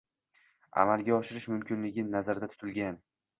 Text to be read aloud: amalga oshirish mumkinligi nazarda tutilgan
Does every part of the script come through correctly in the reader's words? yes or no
yes